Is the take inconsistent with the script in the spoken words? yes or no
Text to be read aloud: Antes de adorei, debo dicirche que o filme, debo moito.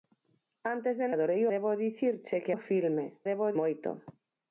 no